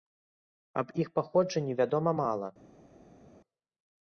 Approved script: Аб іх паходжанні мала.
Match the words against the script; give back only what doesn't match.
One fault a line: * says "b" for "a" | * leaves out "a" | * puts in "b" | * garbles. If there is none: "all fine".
* puts in "вядома"